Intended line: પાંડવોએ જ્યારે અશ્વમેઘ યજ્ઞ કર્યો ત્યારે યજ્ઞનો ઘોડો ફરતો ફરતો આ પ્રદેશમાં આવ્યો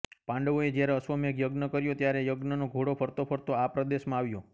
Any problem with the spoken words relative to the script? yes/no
no